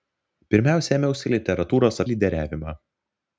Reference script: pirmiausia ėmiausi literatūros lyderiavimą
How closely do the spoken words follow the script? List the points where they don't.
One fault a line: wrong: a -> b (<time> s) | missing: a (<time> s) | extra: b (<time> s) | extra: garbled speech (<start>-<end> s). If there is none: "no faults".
no faults